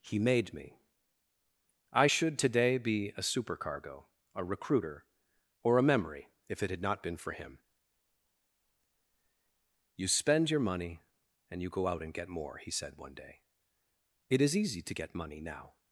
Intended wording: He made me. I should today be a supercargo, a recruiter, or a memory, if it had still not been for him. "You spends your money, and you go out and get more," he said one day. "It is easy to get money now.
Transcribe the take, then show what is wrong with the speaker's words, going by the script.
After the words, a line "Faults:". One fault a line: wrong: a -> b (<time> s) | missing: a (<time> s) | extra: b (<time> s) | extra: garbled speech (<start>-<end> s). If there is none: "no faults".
He made me. I should today be a supercargo, a recruiter, or a memory, if it had not been for him. "You spend your money, and you go out and get more," he said one day. "It is easy to get money now.
Faults:
missing: still (6.8 s)
wrong: spends -> spend (10.1 s)